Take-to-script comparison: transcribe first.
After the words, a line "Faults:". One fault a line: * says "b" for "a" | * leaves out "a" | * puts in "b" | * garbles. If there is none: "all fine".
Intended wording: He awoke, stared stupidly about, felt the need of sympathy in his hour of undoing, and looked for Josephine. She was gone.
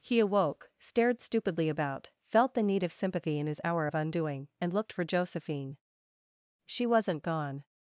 He awoke, stared stupidly about, felt the need of sympathy in his hour of undoing, and looked for Josephine. She wasn't gone.
Faults:
* says "wasn't" for "was"